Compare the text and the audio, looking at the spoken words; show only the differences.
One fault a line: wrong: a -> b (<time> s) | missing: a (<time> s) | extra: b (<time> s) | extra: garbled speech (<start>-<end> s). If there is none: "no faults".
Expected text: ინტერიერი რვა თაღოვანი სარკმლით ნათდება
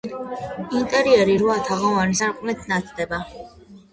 no faults